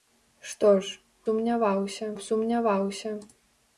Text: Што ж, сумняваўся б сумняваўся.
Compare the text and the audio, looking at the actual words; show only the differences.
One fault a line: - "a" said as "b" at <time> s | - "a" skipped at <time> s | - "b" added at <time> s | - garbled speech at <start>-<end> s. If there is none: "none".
none